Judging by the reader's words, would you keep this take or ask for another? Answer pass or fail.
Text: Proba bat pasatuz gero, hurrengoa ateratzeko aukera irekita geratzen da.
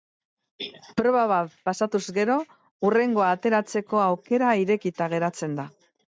pass